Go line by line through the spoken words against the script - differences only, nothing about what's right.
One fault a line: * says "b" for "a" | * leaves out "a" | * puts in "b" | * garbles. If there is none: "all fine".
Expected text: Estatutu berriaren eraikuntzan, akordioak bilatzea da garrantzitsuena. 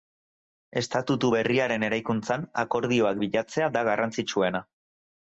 all fine